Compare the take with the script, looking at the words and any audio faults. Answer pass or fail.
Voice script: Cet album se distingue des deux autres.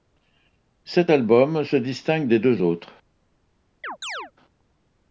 fail